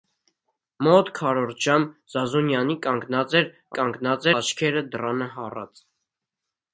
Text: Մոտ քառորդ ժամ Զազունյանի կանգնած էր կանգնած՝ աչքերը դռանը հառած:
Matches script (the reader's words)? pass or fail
pass